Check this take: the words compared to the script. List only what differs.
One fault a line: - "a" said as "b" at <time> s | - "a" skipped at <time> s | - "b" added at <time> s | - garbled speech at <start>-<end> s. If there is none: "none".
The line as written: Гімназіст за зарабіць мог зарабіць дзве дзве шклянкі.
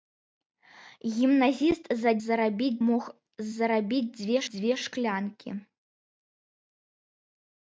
none